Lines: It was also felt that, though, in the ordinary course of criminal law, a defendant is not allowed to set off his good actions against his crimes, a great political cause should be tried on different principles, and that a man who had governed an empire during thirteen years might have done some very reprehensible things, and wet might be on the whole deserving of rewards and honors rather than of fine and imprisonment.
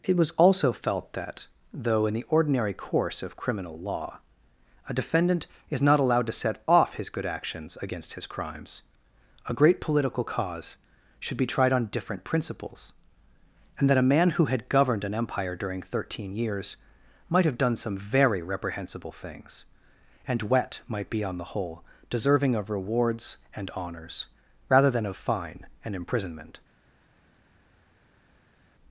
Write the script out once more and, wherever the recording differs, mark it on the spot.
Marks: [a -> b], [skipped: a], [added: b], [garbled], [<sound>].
It was also felt that, though, in the ordinary course of criminal law, a defendant is not allowed to set off his good actions against his crimes, a great political cause should be tried on different principles, and that a man who had governed an empire during thirteen years might have done some very reprehensible things, and wet might be on the whole deserving of rewards and honors rather than of fine and imprisonment.